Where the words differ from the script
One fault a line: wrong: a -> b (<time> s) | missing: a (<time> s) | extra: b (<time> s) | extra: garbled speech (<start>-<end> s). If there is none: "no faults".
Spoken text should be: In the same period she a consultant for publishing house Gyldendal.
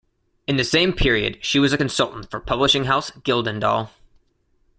extra: was (1.6 s)